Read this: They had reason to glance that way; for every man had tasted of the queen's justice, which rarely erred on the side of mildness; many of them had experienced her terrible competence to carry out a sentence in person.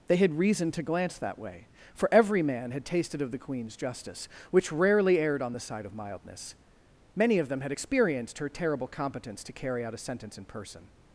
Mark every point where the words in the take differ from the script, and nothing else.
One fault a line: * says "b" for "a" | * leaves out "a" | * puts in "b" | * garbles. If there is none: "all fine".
all fine